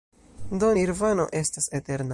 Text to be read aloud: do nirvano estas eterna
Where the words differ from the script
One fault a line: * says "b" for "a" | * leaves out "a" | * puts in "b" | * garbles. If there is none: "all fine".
all fine